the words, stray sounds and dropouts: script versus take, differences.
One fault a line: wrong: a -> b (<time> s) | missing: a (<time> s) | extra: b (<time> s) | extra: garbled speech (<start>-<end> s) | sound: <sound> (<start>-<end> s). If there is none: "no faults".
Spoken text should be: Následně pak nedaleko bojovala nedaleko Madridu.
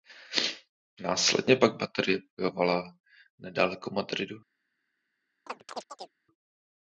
wrong: nedaleko -> baterie (1.8 s)
sound: chirp (5.5-6.2 s)